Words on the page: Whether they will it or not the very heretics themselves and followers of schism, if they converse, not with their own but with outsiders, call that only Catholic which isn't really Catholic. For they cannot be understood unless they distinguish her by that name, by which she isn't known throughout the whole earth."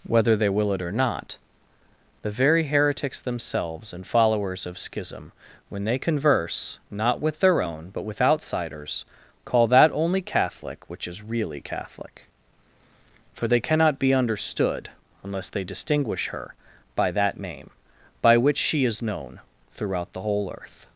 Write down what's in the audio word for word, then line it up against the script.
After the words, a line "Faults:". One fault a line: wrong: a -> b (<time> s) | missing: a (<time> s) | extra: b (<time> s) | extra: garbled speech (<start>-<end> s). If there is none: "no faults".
Whether they will it or not the very heretics themselves and followers of schism, when they converse, not with their own but with outsiders, call that only Catholic which is really Catholic. For they cannot be understood unless they distinguish her by that name, by which she is known throughout the whole earth."
Faults:
wrong: if -> when (5.7 s)
wrong: isn't -> is (11.1 s)
wrong: isn't -> is (18.9 s)